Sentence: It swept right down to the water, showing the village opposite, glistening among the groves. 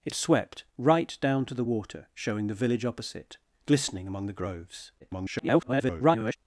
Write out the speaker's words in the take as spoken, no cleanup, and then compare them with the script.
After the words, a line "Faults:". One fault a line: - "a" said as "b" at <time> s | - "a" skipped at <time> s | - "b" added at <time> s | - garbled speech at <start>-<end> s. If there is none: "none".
It swept right down to the water, showing the village opposite, glistening among the groves. [garbled]
Faults:
- garbled speech at 5.0-6.4 s